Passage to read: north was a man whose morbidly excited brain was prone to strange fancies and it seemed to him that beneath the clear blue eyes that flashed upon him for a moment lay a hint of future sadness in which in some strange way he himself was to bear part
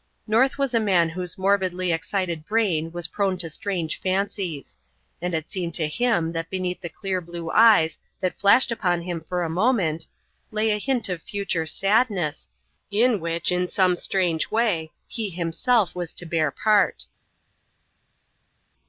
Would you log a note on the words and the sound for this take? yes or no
no